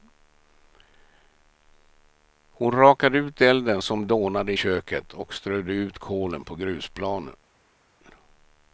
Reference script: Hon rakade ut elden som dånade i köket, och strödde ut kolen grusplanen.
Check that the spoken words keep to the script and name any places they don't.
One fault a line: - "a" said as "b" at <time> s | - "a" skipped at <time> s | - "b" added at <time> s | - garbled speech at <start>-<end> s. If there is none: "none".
- "på" added at 6.4 s